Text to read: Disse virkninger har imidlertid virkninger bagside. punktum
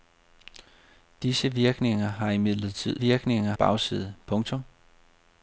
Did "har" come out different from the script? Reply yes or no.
no